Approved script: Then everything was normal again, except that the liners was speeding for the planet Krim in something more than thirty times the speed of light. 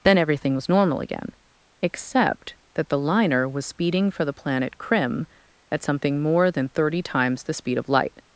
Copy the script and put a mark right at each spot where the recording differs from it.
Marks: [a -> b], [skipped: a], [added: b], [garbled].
Then everything was normal again, except that the [liners -> liner] was speeding for the planet Krim [in -> at] something more than thirty times the speed of light.